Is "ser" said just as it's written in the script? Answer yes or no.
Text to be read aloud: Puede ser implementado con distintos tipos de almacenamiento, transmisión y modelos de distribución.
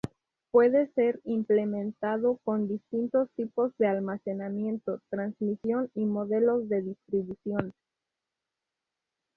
yes